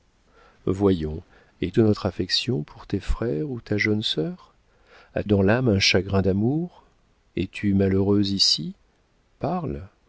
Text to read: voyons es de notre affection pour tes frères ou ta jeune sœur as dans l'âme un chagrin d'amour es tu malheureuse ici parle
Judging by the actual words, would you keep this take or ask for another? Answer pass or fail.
pass